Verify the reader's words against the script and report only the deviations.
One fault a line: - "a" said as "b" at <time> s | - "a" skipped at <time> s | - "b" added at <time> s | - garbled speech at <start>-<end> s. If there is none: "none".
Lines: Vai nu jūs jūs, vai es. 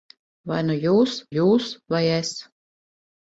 none